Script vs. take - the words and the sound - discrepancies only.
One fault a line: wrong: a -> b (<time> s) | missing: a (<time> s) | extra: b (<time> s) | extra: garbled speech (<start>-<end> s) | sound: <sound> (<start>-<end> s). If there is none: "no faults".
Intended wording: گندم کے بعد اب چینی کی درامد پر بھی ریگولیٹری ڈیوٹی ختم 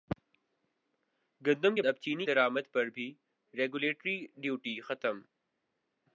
missing: بعد (1.8 s)
missing: کی (2.3 s)